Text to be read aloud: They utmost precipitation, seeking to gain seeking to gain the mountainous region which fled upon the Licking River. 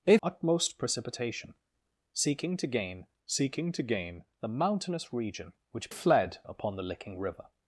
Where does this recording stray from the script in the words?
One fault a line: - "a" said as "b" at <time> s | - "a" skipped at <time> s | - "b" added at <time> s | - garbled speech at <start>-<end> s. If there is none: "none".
none